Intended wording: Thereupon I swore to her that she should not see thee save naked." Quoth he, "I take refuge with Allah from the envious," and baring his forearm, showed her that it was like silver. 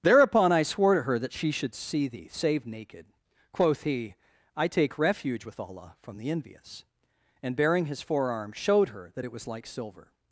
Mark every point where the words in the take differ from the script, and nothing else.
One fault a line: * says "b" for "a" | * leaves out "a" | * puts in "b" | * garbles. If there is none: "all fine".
* leaves out "not"